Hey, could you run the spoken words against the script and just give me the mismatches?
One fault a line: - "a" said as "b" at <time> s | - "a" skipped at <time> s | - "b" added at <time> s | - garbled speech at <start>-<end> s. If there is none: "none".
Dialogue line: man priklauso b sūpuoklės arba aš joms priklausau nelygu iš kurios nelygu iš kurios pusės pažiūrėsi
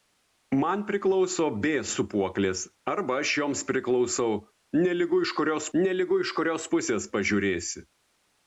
none